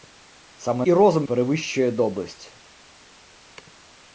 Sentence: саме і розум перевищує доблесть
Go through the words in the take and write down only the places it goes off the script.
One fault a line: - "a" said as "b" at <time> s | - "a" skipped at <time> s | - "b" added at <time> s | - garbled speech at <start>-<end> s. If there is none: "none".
none